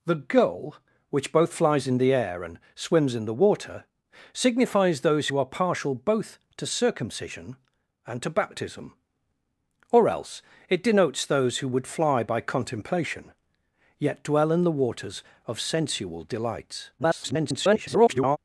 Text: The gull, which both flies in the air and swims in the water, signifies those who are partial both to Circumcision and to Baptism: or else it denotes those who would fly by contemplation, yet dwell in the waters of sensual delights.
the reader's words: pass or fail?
fail